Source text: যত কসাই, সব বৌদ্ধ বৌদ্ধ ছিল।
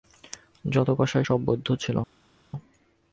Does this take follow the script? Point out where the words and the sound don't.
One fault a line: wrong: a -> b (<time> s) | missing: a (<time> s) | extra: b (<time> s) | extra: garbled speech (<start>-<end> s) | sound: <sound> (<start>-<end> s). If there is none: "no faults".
missing: বৌদ্ধ (1.7 s)